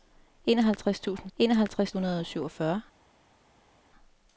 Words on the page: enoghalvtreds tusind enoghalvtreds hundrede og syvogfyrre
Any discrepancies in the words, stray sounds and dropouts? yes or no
no